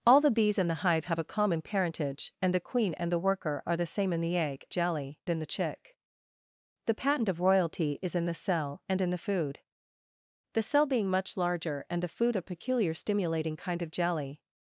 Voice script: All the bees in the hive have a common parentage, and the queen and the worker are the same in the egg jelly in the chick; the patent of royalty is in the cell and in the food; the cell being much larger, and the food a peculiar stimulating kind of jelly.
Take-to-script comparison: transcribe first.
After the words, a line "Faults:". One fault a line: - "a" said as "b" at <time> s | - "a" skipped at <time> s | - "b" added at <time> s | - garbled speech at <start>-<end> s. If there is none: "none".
All the bees in the hive have a common parentage, and the queen and the worker are the same in the egg jelly in the chick; the patent of royalty is in the cell and in the food; the cell being much larger, and the food a peculiar stimulating kind of jelly.
Faults:
none